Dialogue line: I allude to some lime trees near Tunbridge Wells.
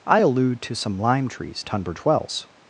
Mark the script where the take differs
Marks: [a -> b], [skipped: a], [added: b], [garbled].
I allude to some lime trees [skipped: near] Tunbridge Wells.